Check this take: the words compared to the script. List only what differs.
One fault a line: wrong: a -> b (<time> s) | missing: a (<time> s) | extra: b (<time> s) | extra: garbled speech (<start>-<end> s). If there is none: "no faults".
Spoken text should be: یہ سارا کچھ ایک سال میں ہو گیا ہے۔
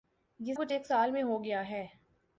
missing: سارا (0.5 s)